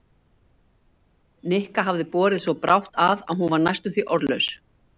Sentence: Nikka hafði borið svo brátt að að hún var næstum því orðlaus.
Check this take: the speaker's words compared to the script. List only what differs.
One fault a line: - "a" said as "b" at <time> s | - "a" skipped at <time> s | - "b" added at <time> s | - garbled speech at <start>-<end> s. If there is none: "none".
none